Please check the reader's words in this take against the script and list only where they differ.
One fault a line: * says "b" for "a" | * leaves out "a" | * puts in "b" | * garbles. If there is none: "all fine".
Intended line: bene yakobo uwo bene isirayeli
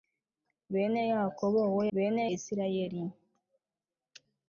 all fine